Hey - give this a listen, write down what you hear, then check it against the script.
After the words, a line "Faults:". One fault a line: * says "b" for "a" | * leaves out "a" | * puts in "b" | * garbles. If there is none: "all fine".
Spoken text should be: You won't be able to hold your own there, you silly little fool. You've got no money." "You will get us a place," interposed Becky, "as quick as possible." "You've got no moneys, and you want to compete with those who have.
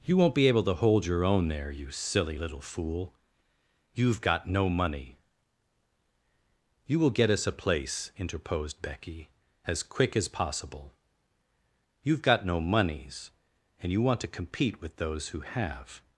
You won't be able to hold your own there, you silly little fool. You've got no money." "You will get us a place," interposed Becky, "as quick as possible." "You've got no moneys, and you want to compete with those who have.
Faults:
all fine